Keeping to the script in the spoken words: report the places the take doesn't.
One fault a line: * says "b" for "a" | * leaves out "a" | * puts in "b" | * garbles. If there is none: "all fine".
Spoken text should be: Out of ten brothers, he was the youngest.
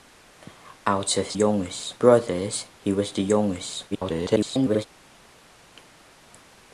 * says "youngest" for "ten"
* garbles